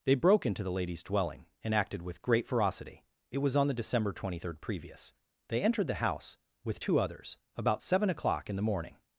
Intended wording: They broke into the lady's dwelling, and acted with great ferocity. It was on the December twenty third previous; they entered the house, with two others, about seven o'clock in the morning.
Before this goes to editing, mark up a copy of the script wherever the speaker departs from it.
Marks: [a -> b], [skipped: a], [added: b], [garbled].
They broke into the lady's dwelling, and acted with great ferocity. It was on the December twenty third previous; they entered the house, with two others, about seven o'clock in the morning.